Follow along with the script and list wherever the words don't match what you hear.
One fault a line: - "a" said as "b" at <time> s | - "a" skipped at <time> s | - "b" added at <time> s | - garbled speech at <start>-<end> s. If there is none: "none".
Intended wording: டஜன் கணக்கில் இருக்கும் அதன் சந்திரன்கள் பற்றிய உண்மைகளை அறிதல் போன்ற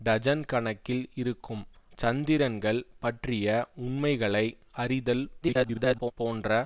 - "அதன்" skipped at 1.6 s
- garbled speech at 5.4-6.1 s